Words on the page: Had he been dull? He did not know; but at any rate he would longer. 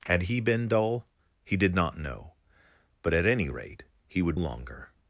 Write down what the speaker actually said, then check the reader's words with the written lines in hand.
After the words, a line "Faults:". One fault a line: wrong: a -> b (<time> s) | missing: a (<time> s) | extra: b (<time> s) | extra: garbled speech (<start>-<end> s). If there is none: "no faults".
Had he been dull? He did not know; but at any rate he would longer.
Faults:
no faults